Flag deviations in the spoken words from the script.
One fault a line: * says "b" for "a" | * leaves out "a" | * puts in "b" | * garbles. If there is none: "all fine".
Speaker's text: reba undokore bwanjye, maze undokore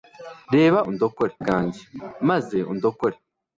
all fine